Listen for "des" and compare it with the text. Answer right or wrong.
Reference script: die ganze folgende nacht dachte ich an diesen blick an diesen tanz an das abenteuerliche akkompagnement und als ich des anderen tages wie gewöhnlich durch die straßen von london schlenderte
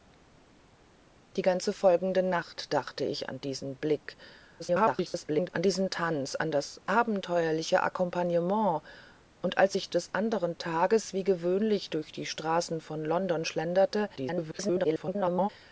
right